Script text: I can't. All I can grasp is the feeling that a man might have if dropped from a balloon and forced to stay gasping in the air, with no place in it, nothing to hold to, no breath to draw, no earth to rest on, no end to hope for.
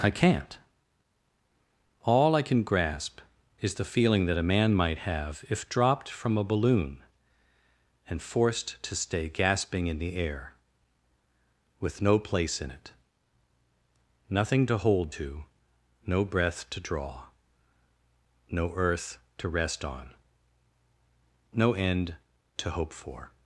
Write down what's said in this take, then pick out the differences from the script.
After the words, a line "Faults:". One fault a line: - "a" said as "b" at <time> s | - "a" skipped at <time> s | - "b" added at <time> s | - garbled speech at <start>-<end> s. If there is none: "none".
I can't. All I can grasp is the feeling that a man might have if dropped from a balloon and forced to stay gasping in the air, with no place in it, nothing to hold to, no breath to draw, no earth to rest on, no end to hope for.
Faults:
none